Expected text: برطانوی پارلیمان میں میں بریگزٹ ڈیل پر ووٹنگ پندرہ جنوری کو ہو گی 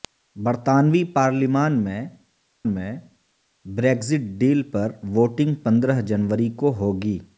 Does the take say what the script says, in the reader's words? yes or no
yes